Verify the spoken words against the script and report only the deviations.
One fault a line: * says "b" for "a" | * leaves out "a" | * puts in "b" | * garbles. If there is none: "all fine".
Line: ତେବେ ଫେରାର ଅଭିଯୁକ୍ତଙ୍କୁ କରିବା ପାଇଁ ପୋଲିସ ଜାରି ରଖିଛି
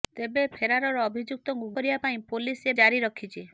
all fine